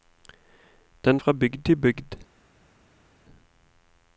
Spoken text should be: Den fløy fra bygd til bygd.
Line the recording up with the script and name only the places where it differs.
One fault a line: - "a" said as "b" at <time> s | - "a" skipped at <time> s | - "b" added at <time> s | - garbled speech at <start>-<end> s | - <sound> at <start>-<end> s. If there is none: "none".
- "fløy" skipped at 1.2 s